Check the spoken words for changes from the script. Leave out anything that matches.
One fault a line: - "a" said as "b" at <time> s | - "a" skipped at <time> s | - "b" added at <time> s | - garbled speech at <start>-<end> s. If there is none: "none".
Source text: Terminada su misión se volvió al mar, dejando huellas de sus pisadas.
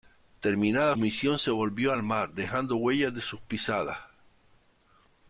- "su" skipped at 1.0 s